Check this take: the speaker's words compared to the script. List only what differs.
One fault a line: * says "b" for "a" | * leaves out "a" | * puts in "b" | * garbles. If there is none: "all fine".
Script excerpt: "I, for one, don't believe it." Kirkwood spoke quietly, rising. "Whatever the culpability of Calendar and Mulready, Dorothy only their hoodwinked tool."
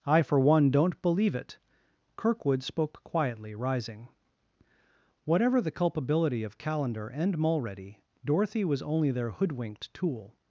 * puts in "was"